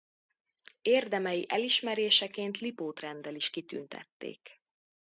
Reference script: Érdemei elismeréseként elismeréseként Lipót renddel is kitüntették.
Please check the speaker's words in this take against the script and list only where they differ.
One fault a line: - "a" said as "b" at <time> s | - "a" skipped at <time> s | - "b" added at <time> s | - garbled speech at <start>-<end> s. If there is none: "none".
- "elismeréseként" skipped at 2.6 s